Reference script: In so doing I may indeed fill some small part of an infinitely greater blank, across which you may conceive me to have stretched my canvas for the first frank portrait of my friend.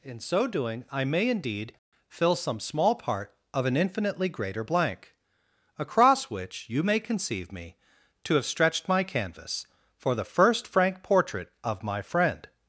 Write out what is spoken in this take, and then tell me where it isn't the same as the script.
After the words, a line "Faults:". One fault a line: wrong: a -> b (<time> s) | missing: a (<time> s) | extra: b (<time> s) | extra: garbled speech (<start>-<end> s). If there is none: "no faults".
In so doing I may indeed fill some small part of an infinitely greater blank, across which you may conceive me to have stretched my canvas for the first frank portrait of my friend.
Faults:
no faults